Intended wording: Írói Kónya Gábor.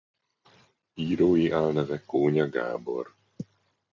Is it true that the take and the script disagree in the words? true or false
true